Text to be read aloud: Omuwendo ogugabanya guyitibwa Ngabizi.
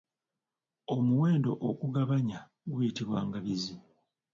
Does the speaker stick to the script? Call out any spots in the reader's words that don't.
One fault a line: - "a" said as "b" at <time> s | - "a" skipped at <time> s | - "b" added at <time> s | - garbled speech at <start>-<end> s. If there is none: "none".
none